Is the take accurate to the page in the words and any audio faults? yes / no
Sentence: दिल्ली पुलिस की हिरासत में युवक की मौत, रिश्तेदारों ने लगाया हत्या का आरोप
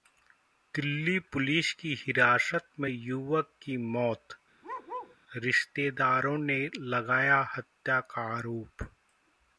no